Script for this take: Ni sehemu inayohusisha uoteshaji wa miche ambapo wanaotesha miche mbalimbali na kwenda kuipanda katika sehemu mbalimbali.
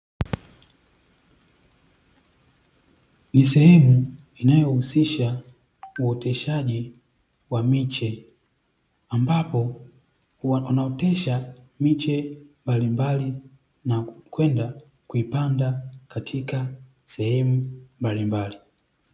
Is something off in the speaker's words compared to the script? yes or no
no